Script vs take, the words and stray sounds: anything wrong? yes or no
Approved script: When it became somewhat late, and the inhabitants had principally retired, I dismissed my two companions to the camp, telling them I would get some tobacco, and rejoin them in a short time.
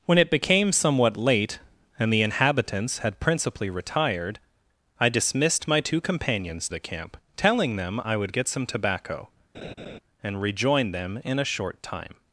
yes